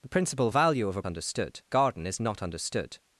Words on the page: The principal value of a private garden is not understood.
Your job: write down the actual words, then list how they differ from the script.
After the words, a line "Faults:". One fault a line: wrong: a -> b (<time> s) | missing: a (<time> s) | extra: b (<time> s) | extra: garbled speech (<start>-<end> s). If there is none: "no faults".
The principal value of a understood garden is not understood.
Faults:
wrong: private -> understood (1.0 s)